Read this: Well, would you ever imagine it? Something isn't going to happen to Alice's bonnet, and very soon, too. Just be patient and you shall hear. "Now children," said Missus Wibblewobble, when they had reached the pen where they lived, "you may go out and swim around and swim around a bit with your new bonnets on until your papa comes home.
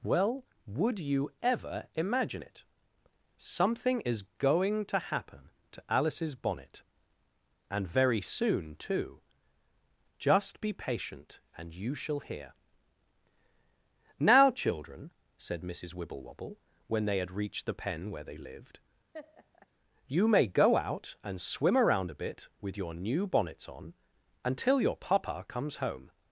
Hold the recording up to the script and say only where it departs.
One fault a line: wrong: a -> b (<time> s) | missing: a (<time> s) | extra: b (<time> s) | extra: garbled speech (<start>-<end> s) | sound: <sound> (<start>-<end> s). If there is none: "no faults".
wrong: isn't -> is (4.0 s)
sound: laugh (19.1-19.7 s)
missing: and swim around (22.1 s)